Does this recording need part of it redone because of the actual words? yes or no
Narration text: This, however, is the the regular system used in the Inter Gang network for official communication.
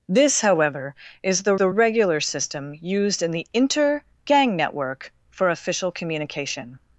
no